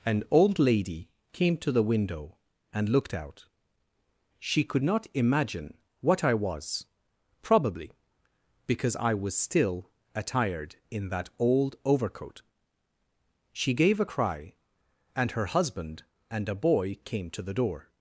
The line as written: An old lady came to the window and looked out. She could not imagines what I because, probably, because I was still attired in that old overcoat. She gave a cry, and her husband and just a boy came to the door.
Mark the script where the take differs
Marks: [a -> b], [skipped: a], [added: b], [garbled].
An old lady came to the window and looked out. She could not [imagines -> imagine] what I [because, -> was] probably, because I was still attired in that old overcoat. She gave a cry, and her husband and [skipped: just] a boy came to the door.